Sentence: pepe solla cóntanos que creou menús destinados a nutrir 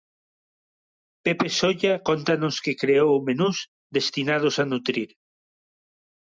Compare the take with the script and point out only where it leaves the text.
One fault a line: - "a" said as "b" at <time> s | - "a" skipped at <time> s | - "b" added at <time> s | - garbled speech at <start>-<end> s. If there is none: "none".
none